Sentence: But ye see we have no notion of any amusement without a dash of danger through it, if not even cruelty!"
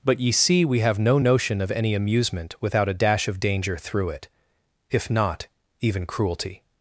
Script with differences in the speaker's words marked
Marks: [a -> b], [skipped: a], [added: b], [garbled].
But ye see we have no notion of any amusement without a dash of danger through it, if not even cruelty!"